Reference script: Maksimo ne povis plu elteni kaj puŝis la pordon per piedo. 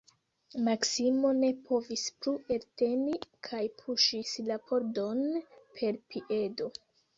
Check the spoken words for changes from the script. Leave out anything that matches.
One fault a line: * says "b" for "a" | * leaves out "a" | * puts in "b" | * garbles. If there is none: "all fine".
all fine